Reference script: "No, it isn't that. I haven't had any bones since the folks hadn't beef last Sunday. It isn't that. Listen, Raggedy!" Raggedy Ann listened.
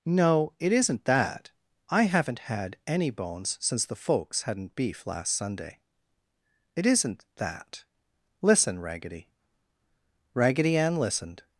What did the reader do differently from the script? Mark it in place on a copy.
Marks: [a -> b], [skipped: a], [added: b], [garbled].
"No, it isn't that. I haven't had any bones since the folks hadn't beef last Sunday. It isn't that. Listen, Raggedy!" Raggedy Ann listened.